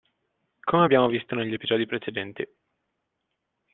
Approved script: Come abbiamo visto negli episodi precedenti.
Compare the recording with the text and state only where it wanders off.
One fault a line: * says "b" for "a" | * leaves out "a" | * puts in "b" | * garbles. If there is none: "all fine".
all fine